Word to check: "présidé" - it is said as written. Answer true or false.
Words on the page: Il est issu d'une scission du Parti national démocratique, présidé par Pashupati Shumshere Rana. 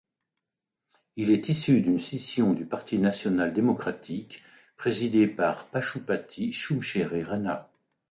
true